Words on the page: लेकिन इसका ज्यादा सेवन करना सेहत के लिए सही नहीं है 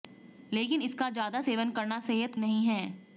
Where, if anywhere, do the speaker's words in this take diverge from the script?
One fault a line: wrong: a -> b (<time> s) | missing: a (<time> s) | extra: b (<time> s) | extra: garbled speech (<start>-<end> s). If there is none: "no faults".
missing: के लिए सही (2.3 s)